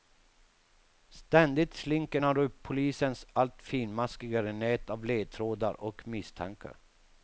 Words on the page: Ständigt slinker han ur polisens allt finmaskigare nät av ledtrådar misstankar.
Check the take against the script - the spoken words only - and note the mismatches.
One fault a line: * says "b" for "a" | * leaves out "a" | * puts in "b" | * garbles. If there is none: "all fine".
* puts in "och"